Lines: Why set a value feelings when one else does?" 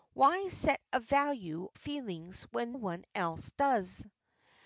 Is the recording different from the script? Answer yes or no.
no